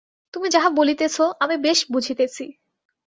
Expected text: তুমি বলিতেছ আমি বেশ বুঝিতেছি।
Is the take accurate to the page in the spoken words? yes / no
no